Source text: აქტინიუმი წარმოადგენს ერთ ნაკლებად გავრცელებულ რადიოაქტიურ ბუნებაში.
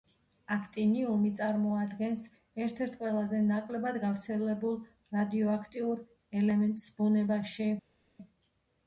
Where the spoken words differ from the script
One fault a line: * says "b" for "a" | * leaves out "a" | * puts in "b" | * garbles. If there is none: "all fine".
* puts in "ერთ ყველაზე"
* puts in "ელემენტს"